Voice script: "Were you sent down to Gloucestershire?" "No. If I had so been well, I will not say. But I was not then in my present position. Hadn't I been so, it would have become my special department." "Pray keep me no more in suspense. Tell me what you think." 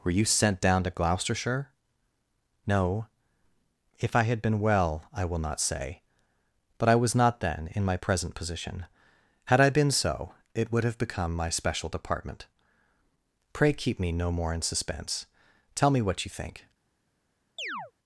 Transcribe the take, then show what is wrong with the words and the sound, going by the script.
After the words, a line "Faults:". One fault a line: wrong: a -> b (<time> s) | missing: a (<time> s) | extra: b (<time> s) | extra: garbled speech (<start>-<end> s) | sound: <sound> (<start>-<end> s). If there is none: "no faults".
"Were you sent down to Gloucestershire?" "No. If I had been well, I will not say. But I was not then in my present position. Had I been so, it would have become my special department." "Pray keep me no more in suspense. Tell me what you think."
Faults:
missing: so (4.4 s)
wrong: Hadn't -> Had (9.4 s)
sound: chirp (17.6-17.9 s)